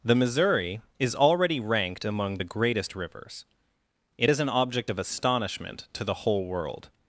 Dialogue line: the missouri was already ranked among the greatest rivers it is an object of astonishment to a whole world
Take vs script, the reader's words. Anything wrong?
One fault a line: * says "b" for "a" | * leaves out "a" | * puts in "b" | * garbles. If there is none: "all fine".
* says "is" for "was"
* says "the" for "a"